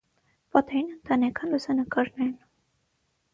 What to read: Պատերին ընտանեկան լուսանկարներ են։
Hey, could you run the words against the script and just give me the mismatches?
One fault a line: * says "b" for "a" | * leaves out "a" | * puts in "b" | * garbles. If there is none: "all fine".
all fine